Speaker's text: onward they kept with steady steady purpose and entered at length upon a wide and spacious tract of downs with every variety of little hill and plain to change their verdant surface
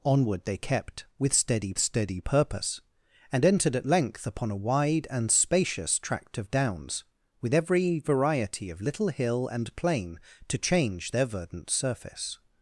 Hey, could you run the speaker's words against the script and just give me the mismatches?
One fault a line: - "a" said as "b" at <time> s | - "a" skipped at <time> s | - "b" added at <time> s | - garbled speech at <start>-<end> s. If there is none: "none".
none